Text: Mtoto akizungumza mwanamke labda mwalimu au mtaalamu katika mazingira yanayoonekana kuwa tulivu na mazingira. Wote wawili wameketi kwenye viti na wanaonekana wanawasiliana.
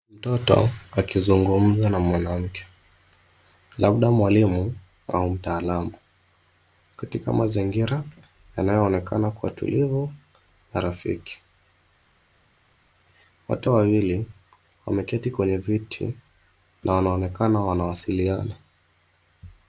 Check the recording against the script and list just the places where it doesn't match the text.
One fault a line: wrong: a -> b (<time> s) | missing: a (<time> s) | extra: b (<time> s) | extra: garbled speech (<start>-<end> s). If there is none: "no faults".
extra: na (1.9 s)
wrong: mazingira -> rafiki (10.8 s)